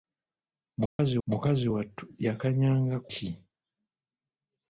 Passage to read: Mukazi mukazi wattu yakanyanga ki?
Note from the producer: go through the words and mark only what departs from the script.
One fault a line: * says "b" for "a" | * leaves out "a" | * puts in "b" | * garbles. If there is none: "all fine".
all fine